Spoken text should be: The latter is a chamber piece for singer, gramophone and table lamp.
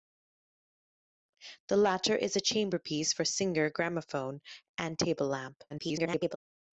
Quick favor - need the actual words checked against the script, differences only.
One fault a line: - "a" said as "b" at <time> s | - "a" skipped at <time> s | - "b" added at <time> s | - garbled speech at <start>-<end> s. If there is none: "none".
- garbled speech at 5.7-6.4 s